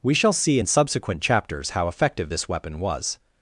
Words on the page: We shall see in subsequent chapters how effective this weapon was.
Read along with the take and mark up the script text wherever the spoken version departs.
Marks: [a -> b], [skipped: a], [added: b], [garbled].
We shall see in subsequent chapters how effective this weapon was.